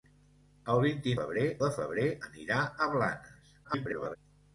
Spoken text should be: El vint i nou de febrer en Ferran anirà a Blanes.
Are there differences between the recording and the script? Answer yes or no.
yes